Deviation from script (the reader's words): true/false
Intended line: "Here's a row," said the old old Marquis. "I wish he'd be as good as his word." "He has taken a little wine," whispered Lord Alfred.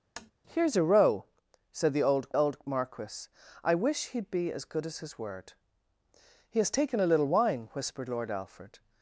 false